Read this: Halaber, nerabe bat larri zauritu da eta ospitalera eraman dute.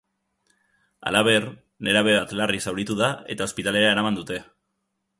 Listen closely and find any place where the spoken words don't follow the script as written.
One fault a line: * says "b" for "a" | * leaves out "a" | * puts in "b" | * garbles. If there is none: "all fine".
all fine